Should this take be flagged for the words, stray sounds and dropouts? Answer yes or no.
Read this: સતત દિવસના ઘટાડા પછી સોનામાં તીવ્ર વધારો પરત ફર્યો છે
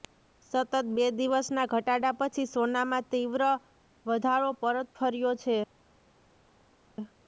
yes